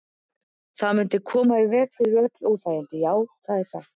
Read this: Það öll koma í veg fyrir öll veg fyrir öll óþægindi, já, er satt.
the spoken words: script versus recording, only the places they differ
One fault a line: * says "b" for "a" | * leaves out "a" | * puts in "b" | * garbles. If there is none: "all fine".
* says "mundi" for "öll"
* leaves out "veg fyrir öll"
* puts in "það"